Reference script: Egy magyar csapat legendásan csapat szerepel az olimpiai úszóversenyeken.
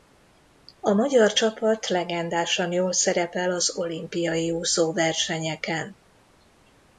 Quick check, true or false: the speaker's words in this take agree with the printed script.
false